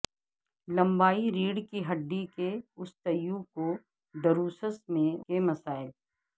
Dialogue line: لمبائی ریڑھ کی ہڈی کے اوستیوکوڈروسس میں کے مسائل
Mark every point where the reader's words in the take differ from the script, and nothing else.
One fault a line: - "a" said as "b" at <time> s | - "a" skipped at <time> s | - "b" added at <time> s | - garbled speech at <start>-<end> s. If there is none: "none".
none